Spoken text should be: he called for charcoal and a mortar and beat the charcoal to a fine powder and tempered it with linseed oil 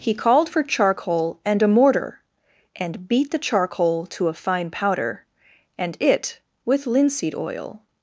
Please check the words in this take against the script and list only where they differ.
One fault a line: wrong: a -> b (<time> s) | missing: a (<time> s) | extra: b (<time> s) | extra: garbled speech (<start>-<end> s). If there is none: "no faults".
missing: tempered (6.0 s)